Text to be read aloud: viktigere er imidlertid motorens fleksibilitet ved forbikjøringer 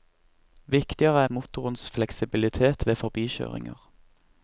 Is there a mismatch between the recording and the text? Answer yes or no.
yes